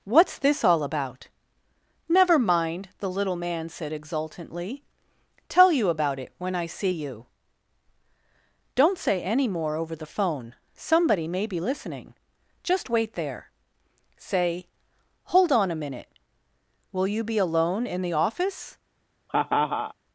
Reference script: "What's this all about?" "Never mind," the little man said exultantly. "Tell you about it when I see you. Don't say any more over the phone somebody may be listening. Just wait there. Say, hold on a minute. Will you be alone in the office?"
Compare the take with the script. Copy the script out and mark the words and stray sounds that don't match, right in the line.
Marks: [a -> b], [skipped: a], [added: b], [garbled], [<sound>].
"What's this all about?" "Never mind," the little man said exultantly. "Tell you about it when I see you. Don't say any more over the phone somebody may be listening. Just wait there. Say, hold on a minute. Will you be alone in the office?" [laugh]